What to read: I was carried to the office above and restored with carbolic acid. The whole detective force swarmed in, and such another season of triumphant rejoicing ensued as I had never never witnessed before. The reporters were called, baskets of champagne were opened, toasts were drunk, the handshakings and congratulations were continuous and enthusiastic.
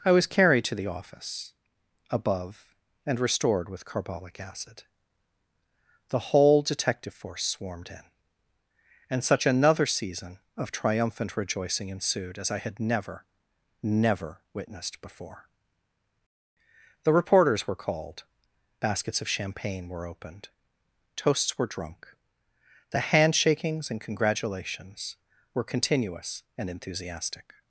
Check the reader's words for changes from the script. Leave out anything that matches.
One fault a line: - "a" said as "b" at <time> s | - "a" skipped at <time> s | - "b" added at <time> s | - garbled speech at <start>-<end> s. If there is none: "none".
none